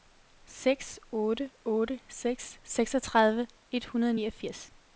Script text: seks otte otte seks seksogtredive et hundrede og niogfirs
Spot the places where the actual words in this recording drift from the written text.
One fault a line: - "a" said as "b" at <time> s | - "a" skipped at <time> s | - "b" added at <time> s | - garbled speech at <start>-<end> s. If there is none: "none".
none